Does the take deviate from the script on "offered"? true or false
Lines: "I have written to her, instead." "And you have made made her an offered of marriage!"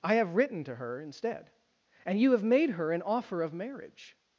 true